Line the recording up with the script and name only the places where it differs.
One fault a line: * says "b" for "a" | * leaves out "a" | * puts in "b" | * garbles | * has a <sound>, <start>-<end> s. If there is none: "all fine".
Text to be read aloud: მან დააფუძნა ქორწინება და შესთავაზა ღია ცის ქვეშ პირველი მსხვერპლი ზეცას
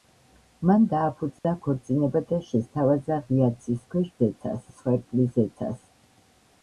* has a dropout, 1.4-1.4 s
* says "ზეცას" for "პირველი"